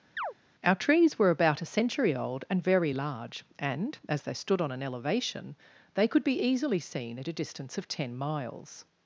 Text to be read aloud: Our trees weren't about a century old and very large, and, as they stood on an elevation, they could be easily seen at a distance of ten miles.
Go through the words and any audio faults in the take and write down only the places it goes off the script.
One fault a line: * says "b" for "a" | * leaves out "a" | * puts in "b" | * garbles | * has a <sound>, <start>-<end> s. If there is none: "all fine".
* has a chirp, 0.2-0.3 s
* says "were" for "weren't"